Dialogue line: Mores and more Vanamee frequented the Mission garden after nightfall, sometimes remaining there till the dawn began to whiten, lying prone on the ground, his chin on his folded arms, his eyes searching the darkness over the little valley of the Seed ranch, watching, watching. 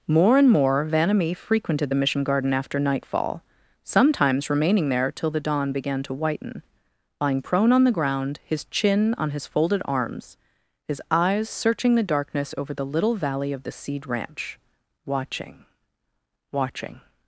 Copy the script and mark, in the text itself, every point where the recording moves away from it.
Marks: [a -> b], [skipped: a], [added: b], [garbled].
[Mores -> More] and more Vanamee frequented the Mission garden after nightfall, sometimes remaining there till the dawn began to whiten, lying prone on the ground, his chin on his folded arms, his eyes searching the darkness over the little valley of the Seed ranch, watching, watching.